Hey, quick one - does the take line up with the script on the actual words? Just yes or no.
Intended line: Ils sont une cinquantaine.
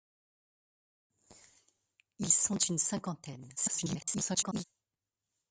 no